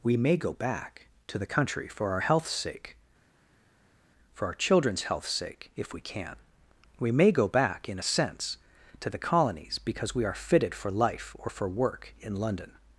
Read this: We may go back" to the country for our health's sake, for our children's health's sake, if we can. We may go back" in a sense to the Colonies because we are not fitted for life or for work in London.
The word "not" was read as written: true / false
false